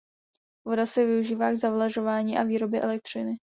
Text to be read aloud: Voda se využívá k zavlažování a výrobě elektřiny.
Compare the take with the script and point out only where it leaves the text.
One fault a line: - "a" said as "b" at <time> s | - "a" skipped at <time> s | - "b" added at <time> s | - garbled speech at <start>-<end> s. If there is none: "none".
none